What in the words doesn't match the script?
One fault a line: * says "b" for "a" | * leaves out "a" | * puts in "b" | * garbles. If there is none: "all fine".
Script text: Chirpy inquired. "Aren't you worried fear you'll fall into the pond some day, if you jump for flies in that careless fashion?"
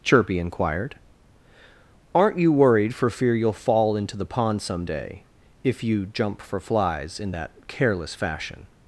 * puts in "for"